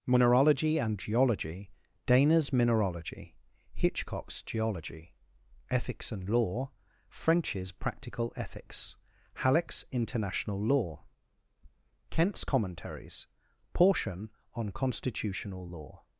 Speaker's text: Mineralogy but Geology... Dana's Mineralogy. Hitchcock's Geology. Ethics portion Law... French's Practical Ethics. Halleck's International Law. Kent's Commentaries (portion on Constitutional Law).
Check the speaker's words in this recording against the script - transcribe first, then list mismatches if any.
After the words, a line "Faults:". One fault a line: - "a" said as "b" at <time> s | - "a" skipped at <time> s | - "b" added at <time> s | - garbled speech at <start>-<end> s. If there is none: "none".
Mineralogy and Geology... Dana's Mineralogy. Hitchcock's Geology. Ethics and Law... French's Practical Ethics. Halleck's International Law. Kent's Commentaries (portion on Constitutional Law).
Faults:
- "but" said as "and" at 0.8 s
- "portion" said as "and" at 6.1 s